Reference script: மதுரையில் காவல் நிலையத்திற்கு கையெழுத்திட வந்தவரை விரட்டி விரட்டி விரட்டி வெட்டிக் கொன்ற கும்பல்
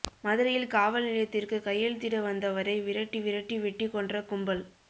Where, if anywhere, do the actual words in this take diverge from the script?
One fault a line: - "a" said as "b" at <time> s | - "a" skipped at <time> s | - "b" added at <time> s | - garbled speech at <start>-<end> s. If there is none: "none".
- "விரட்டி" skipped at 3.6 s